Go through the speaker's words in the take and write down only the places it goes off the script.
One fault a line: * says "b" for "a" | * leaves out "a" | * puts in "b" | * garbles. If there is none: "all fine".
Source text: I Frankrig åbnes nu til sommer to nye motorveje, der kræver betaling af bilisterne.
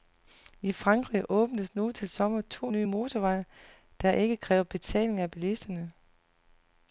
* puts in "ikke"